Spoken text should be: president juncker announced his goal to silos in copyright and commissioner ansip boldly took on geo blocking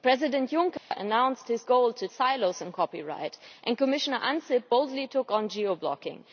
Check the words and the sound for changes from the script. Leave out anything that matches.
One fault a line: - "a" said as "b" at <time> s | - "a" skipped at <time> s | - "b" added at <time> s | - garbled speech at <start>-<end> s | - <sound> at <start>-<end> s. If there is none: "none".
- dropout at 0.8-0.9 s